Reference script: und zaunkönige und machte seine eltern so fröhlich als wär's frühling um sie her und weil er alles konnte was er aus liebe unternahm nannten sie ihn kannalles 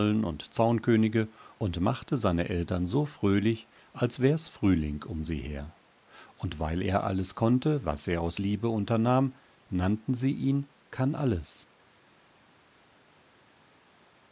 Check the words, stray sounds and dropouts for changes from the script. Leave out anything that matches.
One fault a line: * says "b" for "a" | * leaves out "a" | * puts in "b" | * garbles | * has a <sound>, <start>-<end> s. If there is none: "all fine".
all fine